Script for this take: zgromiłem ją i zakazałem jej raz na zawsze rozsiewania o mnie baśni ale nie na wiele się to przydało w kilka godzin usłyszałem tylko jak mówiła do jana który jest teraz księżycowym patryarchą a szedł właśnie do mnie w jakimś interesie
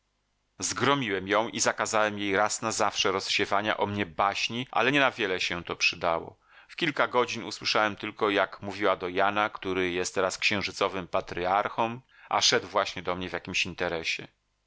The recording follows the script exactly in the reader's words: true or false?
true